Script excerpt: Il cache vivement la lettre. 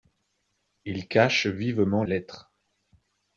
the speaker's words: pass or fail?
fail